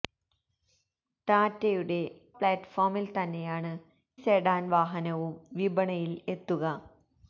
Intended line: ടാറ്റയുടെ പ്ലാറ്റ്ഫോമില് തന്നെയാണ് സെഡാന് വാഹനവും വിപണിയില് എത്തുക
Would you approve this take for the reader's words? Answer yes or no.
yes